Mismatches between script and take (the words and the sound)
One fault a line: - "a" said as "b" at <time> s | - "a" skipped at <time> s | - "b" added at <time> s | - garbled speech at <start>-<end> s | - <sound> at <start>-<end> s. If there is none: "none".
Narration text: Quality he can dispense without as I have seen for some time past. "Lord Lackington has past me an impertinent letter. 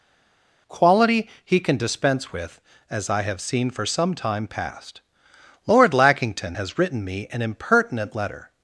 - "without" said as "with" at 2.3 s
- "past" said as "written" at 6.8 s